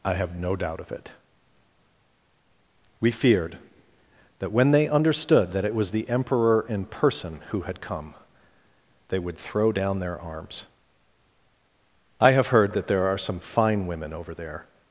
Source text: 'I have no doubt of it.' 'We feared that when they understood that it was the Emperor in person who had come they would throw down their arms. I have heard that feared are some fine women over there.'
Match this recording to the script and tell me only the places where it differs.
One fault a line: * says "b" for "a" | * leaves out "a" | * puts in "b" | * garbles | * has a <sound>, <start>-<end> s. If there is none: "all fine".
* says "there" for "feared"